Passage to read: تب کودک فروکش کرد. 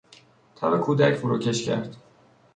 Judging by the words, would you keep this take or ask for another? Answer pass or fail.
pass